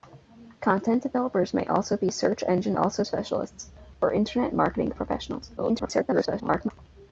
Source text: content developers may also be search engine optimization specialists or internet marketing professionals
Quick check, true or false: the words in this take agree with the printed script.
false